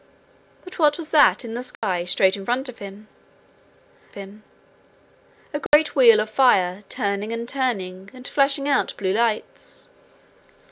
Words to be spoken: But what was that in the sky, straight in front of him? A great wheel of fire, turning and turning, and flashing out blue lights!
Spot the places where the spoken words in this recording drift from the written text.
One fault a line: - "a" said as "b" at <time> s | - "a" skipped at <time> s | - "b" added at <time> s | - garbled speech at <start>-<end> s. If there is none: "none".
- "him" added at 4.1 s